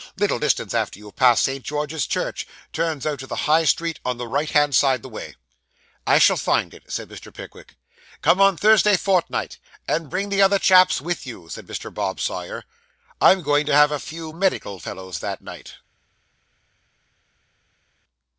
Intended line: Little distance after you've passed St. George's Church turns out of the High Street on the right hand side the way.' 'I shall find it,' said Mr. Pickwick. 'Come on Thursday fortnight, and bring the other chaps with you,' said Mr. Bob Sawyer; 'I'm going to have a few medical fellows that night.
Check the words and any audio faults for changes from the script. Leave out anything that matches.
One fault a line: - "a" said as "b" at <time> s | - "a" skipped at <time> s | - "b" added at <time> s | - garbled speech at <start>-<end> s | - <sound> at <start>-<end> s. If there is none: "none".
none